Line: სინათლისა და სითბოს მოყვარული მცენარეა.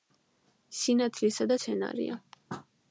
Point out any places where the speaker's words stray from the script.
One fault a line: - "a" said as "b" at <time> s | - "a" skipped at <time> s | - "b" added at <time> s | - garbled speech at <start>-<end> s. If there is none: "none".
- "სითბოს მოყვარული" skipped at 1.6 s